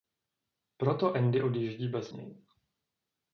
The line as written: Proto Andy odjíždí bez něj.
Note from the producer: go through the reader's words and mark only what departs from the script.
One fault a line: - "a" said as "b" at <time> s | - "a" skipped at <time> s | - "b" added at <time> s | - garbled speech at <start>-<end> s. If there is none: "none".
none